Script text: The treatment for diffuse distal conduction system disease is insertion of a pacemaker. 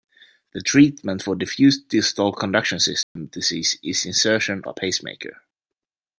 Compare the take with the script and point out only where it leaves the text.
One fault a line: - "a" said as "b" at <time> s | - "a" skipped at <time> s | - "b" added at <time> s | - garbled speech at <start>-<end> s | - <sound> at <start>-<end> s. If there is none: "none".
- dropout at 3.0-3.2 s
- "of" skipped at 4.6 s